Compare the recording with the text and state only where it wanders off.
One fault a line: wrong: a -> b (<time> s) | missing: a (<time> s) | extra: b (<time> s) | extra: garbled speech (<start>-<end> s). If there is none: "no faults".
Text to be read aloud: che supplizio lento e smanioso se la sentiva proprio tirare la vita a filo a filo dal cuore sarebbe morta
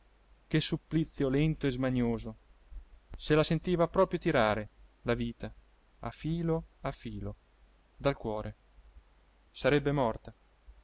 no faults